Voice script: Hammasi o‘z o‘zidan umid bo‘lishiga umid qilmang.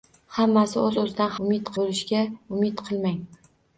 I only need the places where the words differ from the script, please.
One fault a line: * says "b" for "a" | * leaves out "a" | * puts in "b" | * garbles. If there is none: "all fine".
all fine